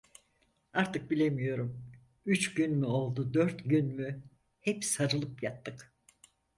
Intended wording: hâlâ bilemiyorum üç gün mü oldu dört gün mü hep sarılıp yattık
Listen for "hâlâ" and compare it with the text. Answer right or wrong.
wrong